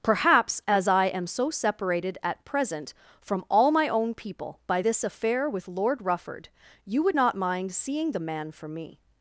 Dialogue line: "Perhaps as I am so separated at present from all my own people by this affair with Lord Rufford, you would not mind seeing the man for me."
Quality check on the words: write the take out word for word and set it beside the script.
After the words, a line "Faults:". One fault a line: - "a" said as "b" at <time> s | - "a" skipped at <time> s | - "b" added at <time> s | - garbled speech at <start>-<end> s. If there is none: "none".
"Perhaps as I am so separated at present from all my own people by this affair with Lord Rufford, you would not mind seeing the man for me."
Faults:
none